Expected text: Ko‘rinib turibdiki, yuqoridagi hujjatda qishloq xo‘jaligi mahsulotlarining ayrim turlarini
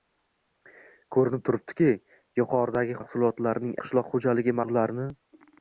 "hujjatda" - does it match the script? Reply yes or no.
no